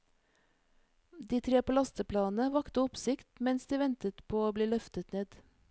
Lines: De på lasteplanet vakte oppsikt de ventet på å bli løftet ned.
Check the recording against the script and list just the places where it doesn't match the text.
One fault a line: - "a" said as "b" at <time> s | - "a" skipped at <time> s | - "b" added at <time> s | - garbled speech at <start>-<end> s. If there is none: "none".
- "tre" added at 1.5 s
- "mens" added at 3.5 s